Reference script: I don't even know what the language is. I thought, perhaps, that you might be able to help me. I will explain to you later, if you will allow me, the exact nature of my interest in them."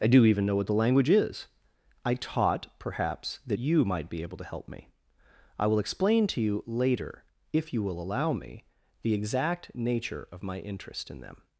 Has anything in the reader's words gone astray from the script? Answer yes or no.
yes